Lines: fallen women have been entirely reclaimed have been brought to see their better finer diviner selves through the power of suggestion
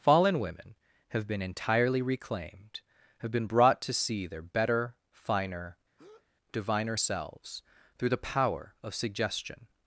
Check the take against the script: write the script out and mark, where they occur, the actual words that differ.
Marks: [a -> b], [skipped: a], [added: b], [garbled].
fallen women have been entirely reclaimed have been brought to see their better finer diviner selves through the power of suggestion